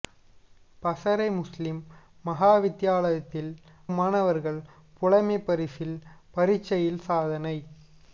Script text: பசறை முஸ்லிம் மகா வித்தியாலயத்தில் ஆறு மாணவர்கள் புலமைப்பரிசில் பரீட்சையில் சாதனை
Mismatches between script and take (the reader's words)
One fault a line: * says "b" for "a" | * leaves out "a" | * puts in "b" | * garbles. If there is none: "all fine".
* leaves out "ஆறு"